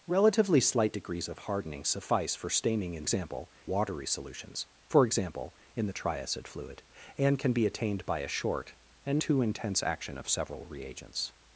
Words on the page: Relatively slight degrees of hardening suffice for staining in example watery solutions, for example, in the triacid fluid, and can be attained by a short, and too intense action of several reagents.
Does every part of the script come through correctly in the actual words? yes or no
yes